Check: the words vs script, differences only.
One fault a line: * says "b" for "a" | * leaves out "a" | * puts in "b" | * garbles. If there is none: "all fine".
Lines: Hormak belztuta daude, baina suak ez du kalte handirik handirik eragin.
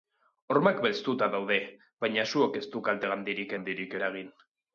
all fine